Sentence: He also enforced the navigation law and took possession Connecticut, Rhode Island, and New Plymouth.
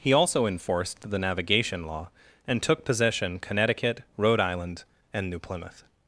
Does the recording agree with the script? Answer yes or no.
yes